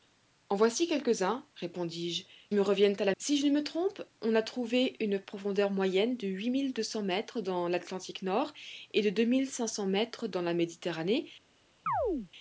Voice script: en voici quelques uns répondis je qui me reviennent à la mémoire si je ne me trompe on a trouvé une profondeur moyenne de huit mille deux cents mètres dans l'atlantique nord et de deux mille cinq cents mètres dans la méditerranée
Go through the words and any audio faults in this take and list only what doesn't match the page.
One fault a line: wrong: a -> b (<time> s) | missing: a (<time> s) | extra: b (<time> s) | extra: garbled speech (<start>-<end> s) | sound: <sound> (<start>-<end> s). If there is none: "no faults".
missing: qui (2.2 s)
missing: mémoire (3.1 s)
sound: chirp (11.9-12.3 s)